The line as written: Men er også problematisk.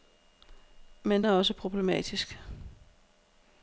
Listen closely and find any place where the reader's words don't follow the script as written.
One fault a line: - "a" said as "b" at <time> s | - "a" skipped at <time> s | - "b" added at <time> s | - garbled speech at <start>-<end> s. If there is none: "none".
none